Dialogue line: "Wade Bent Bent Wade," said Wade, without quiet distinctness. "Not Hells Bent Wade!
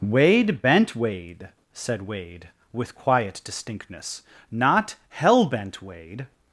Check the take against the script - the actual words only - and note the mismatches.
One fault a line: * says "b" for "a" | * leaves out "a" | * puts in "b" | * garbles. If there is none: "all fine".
* leaves out "Bent"
* says "with" for "without"
* says "Hell" for "Hells"